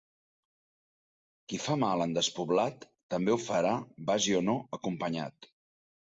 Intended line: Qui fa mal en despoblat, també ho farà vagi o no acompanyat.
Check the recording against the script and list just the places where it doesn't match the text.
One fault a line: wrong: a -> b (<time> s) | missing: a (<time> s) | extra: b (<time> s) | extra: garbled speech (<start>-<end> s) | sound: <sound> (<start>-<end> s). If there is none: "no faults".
no faults